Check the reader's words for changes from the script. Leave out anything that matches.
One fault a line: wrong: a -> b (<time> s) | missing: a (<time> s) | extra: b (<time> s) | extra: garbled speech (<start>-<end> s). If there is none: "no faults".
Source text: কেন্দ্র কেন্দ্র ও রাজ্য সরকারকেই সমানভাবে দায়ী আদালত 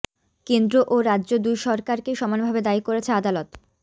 missing: কেন্দ্র (0.8 s)
extra: দুই (1.4 s)
extra: করেছে (2.8 s)